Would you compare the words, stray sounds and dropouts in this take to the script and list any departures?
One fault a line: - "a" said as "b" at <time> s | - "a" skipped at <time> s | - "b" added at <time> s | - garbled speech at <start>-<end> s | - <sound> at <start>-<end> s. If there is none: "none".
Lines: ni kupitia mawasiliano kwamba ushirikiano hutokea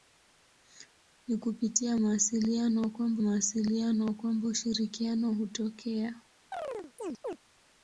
- "mawasiliano kwamba" added at 3.2 s
- chirp at 6.5-7.4 s